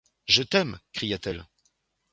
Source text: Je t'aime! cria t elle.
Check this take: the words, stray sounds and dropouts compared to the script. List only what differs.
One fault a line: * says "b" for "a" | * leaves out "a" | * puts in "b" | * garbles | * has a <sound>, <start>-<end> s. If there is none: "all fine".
all fine